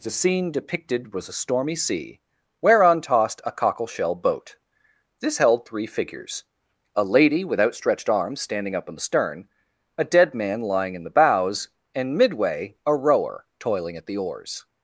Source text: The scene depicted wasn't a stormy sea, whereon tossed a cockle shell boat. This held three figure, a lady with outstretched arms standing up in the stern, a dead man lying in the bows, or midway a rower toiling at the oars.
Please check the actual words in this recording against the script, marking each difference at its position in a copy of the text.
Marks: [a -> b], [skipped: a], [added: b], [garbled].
The scene depicted [wasn't -> was] a stormy sea, whereon tossed a cockle shell boat. This held three [figure, -> figures] a lady with outstretched arms standing up in the stern, a dead man lying in the bows, [or -> and] midway a rower toiling at the oars.